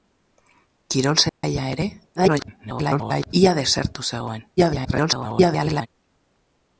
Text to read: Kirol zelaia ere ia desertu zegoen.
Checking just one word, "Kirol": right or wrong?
right